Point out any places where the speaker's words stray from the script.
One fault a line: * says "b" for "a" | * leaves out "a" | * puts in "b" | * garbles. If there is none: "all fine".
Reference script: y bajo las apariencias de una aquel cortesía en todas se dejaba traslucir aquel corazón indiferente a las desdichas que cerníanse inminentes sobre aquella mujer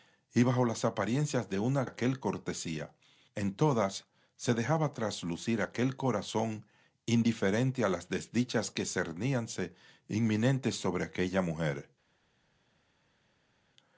all fine